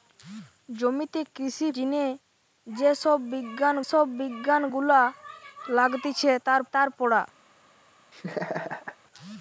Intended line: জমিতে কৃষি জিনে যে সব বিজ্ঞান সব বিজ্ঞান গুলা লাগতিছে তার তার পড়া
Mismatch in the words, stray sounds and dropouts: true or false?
true